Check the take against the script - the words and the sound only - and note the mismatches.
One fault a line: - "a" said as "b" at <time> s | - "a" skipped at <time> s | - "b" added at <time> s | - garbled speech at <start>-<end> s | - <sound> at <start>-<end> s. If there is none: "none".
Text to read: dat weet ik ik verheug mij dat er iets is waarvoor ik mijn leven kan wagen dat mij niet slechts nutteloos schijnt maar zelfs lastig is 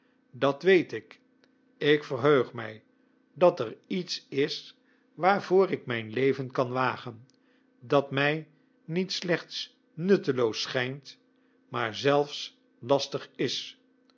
none